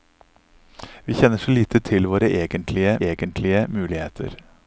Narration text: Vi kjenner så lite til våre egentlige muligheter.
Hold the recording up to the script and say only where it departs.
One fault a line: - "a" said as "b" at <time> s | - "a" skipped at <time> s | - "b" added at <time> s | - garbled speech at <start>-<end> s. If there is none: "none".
- "egentlige" added at 3.0 s